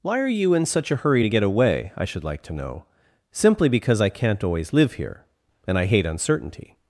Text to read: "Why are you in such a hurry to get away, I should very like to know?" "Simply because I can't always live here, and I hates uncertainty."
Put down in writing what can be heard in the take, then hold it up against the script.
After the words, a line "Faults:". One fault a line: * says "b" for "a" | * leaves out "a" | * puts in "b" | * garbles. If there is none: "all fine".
"Why are you in such a hurry to get away, I should like to know?" "Simply because I can't always live here, and I hate uncertainty."
Faults:
* leaves out "very"
* says "hate" for "hates"